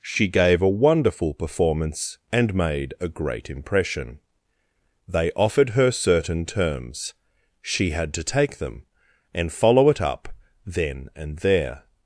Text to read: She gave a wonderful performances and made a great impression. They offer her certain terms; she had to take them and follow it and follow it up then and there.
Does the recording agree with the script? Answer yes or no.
no